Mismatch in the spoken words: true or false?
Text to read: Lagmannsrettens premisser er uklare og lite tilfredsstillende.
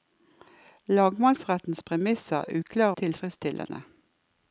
true